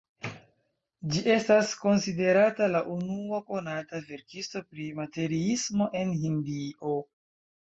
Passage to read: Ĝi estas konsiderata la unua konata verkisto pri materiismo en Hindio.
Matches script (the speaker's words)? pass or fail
pass